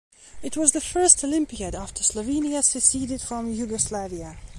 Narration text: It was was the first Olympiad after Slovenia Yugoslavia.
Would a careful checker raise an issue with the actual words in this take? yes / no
yes